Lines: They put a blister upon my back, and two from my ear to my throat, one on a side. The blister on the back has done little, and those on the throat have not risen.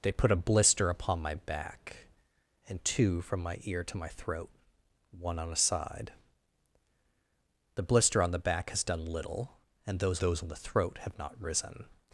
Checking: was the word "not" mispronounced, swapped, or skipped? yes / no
no